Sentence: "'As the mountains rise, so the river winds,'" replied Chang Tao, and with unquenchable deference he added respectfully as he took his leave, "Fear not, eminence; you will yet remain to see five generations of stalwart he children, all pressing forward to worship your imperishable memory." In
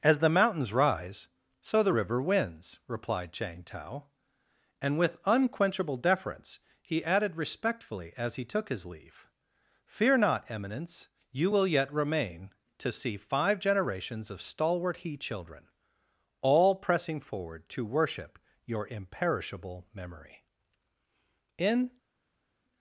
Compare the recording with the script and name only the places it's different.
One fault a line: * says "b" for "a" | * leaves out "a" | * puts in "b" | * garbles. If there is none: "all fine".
all fine